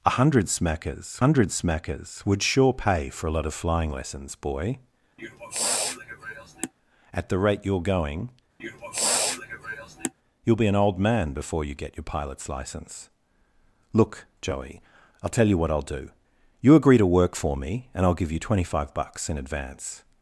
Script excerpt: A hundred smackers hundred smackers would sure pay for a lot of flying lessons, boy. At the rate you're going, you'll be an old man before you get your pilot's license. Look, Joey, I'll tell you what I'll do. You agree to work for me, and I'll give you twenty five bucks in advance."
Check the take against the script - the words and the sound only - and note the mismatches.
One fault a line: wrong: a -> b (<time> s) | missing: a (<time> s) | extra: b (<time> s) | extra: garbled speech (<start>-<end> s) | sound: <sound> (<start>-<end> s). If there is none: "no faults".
sound: sniff (5.2-6.7 s)
sound: sniff (8.6-10.1 s)